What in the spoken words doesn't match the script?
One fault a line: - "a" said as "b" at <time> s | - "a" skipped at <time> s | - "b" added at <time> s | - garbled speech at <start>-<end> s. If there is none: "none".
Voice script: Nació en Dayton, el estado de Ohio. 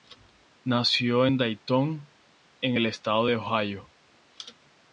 - "en" added at 2.6 s